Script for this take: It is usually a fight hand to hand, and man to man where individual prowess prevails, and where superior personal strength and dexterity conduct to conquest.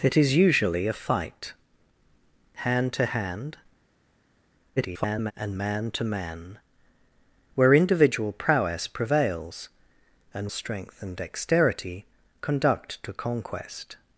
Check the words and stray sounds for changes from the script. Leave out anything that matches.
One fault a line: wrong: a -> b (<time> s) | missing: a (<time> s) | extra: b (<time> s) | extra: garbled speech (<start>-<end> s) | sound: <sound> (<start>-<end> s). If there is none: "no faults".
extra: garbled speech (4.8-5.3 s)
missing: where superior personal (10.5 s)